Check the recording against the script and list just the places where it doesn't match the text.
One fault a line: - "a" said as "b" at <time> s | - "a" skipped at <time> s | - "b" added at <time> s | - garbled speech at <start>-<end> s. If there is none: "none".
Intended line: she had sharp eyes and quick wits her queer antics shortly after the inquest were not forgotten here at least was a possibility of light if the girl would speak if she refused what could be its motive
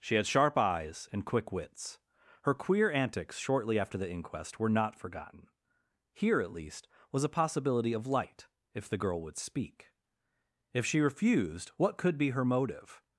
- "its" said as "her" at 12.3 s